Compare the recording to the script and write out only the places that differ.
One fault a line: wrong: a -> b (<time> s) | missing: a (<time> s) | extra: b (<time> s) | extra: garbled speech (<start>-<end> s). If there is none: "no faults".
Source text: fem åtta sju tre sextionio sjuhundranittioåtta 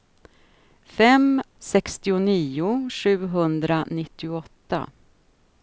missing: åtta sju tre (1.4 s)